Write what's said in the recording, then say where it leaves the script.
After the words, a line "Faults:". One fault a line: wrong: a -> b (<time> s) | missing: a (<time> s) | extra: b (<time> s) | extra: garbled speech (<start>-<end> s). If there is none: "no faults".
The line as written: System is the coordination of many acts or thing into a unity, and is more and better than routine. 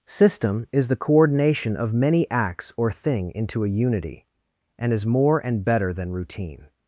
System is the coordination of many acts or thing into a unity, and is more and better than routine.
Faults:
no faults